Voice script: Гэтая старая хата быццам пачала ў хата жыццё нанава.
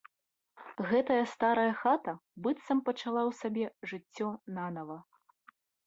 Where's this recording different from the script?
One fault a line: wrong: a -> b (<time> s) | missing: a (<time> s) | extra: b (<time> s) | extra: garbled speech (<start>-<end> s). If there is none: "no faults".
wrong: хата -> сабе (3.4 s)